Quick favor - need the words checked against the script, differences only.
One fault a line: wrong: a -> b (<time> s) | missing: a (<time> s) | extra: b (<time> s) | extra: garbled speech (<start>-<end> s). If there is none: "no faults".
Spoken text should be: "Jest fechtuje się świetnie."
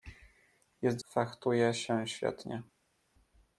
no faults